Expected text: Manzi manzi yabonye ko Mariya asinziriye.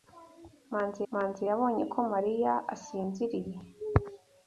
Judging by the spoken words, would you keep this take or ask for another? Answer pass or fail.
pass